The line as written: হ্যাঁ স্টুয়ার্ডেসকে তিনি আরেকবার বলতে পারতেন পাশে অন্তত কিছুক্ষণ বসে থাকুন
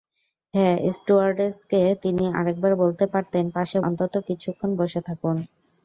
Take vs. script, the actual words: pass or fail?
pass